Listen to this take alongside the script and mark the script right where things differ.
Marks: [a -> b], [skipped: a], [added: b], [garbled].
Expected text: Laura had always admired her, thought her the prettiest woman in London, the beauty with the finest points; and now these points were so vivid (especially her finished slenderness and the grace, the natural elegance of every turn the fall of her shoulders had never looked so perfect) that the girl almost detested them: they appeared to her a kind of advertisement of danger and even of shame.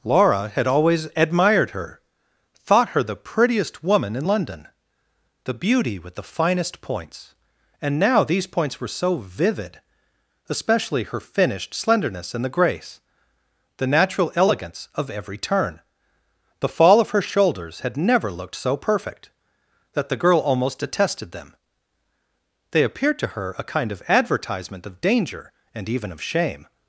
Laura had always admired her, thought her the prettiest woman in London, the beauty with the finest points; and now these points were so vivid (especially her finished slenderness and the grace, the natural elegance of every turn the fall of her shoulders had never looked so perfect) that the girl almost detested them: they appeared to her a kind of advertisement of danger and even of shame.